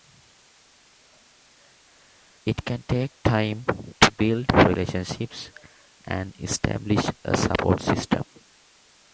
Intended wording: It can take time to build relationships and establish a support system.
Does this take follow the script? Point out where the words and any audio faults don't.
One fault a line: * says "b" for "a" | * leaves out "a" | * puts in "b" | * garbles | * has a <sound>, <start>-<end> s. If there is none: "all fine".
all fine